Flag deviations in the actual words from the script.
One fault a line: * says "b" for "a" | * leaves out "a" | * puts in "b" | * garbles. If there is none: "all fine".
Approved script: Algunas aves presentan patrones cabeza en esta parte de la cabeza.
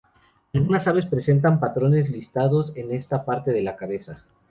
* says "listados" for "cabeza"